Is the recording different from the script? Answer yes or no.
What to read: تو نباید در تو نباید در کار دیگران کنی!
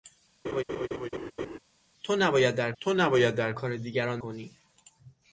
no